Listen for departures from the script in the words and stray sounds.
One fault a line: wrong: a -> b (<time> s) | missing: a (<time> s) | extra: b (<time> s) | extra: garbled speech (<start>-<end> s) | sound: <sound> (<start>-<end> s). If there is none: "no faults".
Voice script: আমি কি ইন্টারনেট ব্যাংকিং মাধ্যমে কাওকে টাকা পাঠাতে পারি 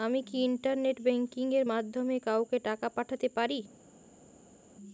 extra: এর (1.5 s)